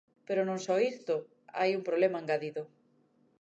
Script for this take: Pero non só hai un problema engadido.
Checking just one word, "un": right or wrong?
right